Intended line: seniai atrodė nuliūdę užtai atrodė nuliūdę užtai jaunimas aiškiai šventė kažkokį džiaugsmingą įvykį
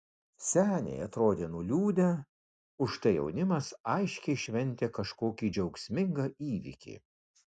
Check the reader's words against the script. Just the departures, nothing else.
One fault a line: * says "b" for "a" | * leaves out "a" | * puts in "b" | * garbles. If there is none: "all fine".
* leaves out "atrodė nuliūdę užtai"